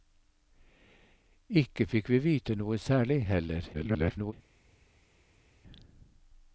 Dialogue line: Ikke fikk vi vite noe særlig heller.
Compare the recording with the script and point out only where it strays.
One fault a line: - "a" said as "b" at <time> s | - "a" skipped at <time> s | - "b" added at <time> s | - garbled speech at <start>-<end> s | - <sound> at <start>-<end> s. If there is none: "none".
- garbled speech at 3.7-4.3 s